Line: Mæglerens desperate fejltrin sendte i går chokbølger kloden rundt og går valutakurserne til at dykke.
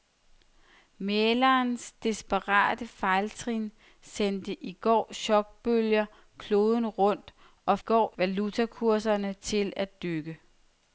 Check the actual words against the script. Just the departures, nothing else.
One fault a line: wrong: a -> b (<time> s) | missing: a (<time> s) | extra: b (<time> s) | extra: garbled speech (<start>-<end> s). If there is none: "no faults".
no faults